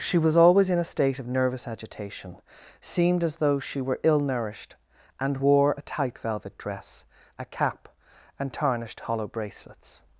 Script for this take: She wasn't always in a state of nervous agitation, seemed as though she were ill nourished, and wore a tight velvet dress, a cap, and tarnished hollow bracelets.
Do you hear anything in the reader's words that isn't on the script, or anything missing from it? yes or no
yes